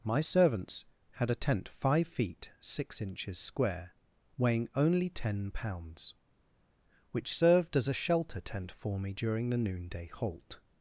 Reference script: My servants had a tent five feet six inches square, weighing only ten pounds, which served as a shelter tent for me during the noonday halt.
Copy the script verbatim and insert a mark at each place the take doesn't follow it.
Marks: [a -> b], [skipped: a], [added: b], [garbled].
My servants had a tent five feet six inches square, weighing only ten pounds, which served as a shelter tent for me during the noonday halt.